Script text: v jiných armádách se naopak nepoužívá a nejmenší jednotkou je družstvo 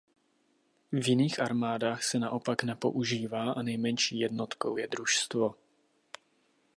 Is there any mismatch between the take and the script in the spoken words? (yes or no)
no